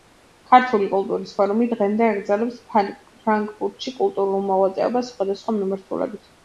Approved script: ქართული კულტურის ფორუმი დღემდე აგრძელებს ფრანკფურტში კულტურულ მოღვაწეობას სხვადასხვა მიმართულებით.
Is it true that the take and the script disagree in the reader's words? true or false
false